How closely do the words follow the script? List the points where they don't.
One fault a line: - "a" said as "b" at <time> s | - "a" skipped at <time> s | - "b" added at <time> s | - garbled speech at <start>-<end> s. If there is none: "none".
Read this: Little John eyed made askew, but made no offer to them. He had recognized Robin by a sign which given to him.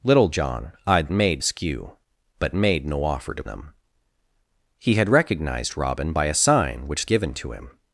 none